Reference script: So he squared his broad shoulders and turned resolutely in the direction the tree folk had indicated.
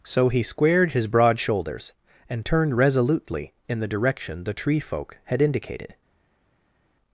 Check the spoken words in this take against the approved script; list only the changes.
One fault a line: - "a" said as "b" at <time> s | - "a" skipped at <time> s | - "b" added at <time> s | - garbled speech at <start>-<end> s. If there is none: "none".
none